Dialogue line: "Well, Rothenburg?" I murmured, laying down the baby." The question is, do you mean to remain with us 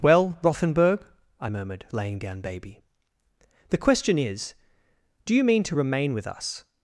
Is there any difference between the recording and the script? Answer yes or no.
yes